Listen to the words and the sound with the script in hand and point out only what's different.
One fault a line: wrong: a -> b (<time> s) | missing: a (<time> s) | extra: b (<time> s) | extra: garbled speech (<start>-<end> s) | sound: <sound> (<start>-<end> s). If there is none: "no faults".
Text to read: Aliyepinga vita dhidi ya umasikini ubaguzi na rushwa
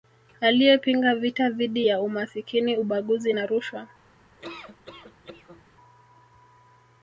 sound: laugh (4.4-5.6 s)